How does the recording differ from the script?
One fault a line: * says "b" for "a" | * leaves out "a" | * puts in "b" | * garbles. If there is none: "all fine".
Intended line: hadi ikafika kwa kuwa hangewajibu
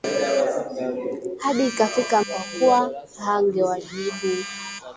all fine